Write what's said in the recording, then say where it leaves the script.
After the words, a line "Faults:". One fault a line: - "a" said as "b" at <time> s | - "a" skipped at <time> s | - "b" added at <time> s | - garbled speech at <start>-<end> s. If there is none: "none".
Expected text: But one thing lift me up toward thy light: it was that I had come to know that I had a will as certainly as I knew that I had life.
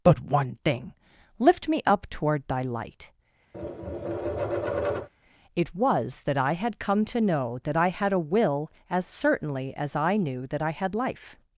But one thing lift me up toward thy light: it was that I had come to know that I had a will as certainly as I knew that I had life.
Faults:
none